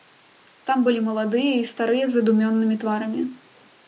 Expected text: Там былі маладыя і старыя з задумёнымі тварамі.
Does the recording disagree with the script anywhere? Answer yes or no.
no